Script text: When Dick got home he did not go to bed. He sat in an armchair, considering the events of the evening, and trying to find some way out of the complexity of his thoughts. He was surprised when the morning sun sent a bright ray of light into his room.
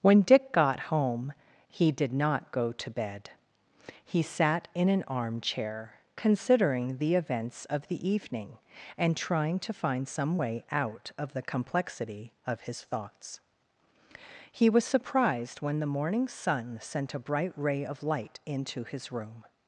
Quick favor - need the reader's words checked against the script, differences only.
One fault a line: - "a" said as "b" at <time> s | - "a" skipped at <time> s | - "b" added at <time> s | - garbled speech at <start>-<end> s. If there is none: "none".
none